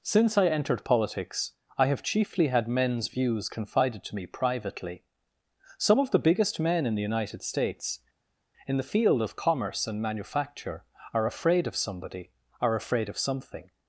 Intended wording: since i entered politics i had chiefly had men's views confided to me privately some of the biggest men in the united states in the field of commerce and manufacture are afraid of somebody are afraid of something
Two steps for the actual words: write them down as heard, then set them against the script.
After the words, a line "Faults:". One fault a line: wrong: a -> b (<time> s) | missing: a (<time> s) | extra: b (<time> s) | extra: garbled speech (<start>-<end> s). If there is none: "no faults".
since i entered politics i have chiefly had men's views confided to me privately some of the biggest men in the united states in the field of commerce and manufacture are afraid of somebody are afraid of something
Faults:
wrong: had -> have (1.9 s)